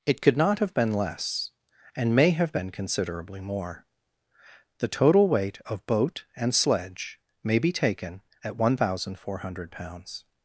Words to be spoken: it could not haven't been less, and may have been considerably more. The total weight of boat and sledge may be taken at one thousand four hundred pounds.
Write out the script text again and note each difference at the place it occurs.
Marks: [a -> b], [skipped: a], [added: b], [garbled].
it could not [haven't -> have] been less, and may have been considerably more. The total weight of boat and sledge may be taken at one thousand four hundred pounds.